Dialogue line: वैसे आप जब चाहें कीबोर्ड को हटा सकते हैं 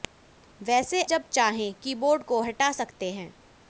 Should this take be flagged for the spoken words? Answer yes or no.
yes